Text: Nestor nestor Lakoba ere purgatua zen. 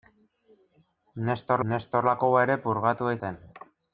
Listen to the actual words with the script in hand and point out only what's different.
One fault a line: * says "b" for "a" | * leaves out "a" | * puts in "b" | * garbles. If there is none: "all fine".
all fine